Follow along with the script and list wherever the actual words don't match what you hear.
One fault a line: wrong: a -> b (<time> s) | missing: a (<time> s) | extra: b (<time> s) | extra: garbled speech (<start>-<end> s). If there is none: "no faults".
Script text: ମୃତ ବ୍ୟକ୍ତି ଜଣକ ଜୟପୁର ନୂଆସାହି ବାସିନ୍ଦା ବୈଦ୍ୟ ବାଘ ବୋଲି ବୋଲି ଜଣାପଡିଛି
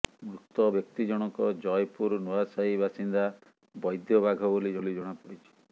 no faults